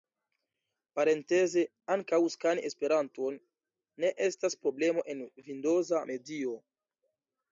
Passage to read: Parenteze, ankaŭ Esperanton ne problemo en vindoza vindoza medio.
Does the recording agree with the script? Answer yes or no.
no